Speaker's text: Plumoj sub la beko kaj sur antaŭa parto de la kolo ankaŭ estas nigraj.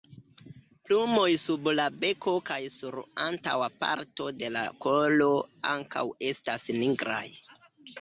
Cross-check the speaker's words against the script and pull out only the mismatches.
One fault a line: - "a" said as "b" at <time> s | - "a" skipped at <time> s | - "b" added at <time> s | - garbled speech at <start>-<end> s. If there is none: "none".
none